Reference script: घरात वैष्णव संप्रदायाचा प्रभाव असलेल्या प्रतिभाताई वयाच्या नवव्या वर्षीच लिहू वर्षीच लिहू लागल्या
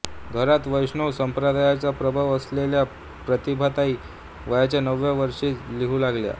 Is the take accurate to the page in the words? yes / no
no